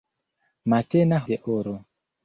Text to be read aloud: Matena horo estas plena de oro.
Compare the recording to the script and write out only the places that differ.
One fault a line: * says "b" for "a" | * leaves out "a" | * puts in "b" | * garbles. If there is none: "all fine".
* leaves out "horo estas plena"